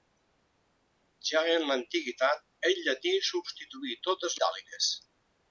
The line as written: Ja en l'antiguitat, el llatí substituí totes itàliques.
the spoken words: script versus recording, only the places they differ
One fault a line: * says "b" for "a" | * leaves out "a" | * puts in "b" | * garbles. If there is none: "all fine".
all fine